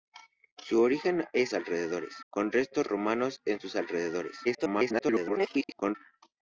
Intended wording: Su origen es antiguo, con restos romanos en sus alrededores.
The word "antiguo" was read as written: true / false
false